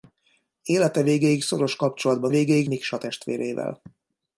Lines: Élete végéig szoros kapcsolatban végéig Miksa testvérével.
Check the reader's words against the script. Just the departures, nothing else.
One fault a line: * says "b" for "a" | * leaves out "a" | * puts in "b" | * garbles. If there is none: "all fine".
all fine